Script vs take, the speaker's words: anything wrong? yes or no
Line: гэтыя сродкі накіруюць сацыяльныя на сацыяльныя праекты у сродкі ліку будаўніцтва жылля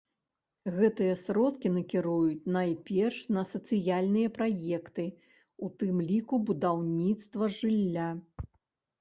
yes